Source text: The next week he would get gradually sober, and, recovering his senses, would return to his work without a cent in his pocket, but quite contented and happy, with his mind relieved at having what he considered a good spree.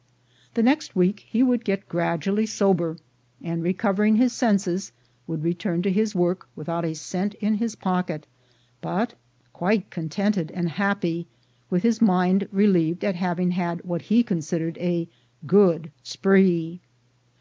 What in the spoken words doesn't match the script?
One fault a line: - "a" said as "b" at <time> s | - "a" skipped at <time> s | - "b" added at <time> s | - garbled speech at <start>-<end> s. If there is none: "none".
- "had" added at 13.5 s